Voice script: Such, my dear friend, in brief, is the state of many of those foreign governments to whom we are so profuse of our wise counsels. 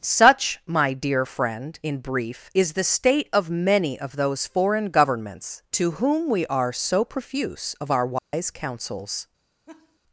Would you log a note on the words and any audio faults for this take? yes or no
yes